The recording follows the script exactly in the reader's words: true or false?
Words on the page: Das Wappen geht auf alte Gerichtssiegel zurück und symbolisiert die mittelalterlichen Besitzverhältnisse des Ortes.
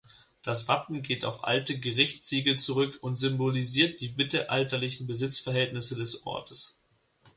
true